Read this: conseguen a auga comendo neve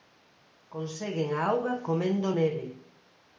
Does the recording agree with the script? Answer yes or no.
yes